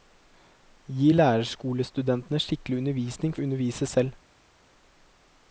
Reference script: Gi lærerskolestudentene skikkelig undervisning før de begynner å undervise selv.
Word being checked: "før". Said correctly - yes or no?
no